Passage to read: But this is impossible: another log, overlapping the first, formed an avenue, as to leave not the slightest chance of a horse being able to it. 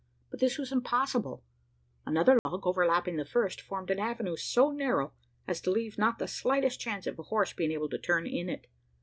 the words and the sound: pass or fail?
fail